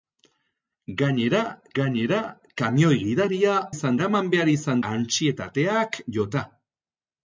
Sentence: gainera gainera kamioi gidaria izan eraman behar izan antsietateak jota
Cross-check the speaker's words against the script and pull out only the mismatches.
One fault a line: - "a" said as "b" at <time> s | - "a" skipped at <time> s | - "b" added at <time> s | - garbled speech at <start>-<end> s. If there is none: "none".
none